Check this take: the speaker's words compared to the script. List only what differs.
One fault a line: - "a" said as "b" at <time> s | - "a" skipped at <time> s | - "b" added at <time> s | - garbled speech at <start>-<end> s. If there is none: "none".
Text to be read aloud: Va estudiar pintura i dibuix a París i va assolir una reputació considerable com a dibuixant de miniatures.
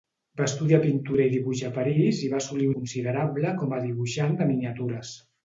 - "una reputació" skipped at 2.7 s